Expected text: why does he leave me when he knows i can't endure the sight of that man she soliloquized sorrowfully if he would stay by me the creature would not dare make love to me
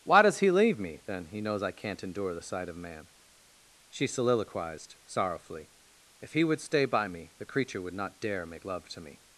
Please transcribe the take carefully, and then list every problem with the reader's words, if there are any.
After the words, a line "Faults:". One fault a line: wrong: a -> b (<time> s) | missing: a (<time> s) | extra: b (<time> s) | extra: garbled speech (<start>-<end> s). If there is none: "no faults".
why does he leave me then he knows i can't endure the sight of man she soliloquized sorrowfully if he would stay by me the creature would not dare make love to me
Faults:
wrong: when -> then (1.1 s)
missing: that (2.8 s)